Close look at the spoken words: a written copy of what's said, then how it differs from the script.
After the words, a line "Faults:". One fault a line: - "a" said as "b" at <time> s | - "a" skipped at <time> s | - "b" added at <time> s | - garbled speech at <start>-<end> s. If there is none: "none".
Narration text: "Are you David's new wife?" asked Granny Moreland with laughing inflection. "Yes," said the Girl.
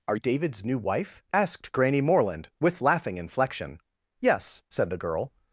"Are David's new wife?" asked Granny Moreland with laughing inflection. "Yes," said the Girl.
Faults:
- "you" skipped at 0.1 s